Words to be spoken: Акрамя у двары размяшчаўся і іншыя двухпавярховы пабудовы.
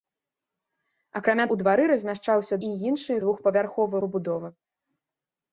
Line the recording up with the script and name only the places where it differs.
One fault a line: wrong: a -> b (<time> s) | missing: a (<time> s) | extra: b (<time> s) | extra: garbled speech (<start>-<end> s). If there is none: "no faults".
no faults